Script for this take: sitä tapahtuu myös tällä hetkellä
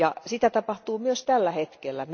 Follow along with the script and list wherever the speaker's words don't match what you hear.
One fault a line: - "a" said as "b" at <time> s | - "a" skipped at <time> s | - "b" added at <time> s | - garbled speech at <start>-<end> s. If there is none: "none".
none